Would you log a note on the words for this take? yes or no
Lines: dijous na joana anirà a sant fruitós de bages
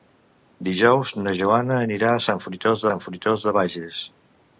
yes